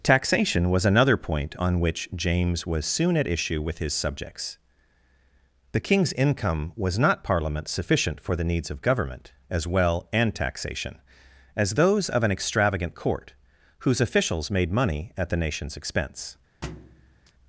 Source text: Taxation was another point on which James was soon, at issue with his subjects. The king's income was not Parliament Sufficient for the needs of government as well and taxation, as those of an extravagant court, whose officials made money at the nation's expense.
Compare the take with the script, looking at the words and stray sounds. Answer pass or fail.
fail